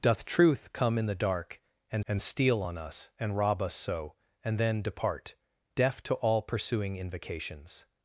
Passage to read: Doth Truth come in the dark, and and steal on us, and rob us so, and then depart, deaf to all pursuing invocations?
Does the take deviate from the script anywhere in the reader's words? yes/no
no